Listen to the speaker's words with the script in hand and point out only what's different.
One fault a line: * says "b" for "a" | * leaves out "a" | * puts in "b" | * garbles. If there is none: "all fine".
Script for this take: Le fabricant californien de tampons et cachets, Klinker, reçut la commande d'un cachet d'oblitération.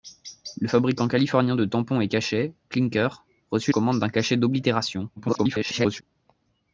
* leaves out "la"
* garbles